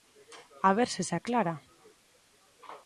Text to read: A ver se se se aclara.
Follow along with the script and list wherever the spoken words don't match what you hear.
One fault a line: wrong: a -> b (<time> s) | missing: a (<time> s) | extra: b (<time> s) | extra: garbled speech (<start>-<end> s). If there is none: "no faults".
missing: se (1.1 s)